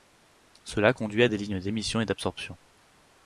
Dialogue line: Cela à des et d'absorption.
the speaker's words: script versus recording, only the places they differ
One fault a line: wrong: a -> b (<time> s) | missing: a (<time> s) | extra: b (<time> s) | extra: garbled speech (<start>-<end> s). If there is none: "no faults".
extra: conduit (0.9 s)
extra: lignes d'émission (1.4 s)